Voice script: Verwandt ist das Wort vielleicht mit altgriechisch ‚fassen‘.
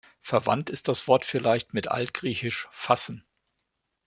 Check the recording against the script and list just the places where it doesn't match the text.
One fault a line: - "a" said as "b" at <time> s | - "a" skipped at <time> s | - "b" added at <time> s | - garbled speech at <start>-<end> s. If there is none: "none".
none